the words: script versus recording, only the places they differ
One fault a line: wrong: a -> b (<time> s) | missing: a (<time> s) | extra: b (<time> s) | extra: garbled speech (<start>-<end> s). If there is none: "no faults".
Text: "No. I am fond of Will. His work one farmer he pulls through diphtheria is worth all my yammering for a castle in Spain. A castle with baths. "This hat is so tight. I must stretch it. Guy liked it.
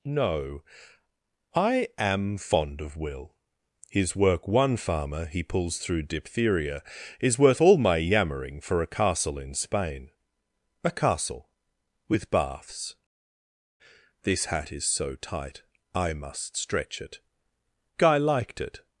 no faults